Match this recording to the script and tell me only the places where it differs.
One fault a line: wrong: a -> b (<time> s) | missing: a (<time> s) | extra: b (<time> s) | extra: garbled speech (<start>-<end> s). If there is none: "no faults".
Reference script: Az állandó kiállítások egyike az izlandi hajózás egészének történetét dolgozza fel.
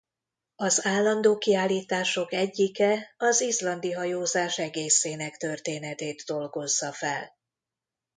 no faults